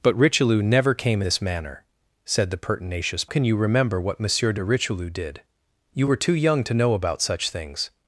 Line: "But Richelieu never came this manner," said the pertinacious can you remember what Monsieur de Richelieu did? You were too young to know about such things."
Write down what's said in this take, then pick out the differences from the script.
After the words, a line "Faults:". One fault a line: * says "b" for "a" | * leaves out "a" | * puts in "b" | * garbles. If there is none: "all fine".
"But Richelieu never came this manner," said the pertinacious can you remember what Monsieur de Richelieu did? You were too young to know about such things."
Faults:
all fine